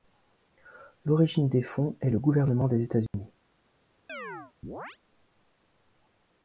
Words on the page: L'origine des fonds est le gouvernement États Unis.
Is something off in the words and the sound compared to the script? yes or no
yes